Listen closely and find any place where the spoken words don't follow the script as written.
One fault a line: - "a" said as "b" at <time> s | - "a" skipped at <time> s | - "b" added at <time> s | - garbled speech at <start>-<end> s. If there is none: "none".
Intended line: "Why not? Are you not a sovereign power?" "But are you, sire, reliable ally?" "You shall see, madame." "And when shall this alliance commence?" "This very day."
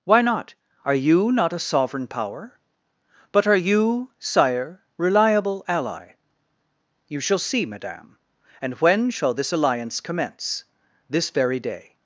none